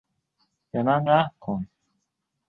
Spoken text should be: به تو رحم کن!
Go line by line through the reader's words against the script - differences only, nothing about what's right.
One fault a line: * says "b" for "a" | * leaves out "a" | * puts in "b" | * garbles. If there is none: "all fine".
* says "من" for "تو"